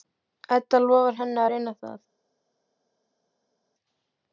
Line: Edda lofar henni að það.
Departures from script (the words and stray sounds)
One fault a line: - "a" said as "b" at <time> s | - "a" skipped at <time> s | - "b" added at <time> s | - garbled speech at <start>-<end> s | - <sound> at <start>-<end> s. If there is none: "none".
- "reyna" added at 1.5 s